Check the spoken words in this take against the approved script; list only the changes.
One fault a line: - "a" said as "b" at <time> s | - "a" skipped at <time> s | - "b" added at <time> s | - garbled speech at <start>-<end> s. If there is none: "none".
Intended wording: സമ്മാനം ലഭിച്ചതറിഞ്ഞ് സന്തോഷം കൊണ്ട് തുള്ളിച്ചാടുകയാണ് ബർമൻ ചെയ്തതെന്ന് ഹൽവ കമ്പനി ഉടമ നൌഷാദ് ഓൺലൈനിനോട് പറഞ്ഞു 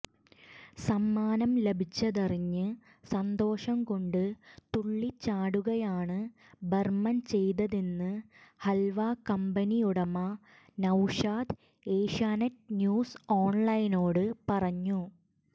- "ഏഷ്യാനെറ്റ് ന്യൂസ്" added at 11.9 s